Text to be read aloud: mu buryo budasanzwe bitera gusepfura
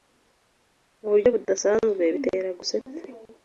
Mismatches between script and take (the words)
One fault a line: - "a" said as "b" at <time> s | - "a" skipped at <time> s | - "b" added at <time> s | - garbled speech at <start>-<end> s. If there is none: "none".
none